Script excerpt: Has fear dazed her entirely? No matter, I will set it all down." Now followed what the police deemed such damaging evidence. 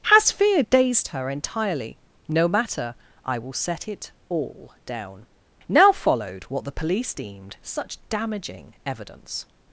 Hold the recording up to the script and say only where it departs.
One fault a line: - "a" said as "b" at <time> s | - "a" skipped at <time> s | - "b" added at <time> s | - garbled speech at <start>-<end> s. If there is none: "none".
none